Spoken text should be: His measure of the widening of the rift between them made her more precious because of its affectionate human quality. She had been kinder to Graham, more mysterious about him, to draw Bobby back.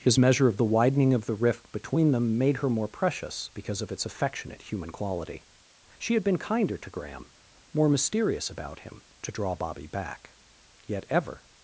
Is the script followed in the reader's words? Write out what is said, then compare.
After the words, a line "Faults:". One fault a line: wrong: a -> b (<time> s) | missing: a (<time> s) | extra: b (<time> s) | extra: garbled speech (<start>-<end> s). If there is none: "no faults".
His measure of the widening of the rift between them made her more precious because of its affectionate human quality. She had been kinder to Graham, more mysterious about him, to draw Bobby back. Yet ever
Faults:
extra: Yet ever (10.8 s)